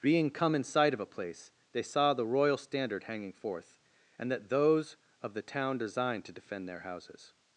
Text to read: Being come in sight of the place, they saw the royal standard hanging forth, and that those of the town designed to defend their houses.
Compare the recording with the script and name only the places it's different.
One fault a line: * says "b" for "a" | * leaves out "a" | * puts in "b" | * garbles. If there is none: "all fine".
* says "a" for "the"